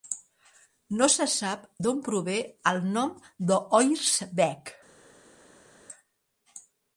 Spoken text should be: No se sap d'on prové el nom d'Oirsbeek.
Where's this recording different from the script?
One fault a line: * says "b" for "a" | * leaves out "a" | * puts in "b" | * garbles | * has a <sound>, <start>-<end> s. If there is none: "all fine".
all fine